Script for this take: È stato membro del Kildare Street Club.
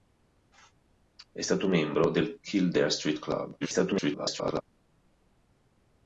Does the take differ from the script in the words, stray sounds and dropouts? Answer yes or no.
yes